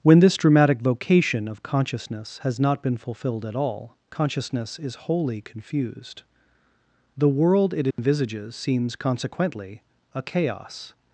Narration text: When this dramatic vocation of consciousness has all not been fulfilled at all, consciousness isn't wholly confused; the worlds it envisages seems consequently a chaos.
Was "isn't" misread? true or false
true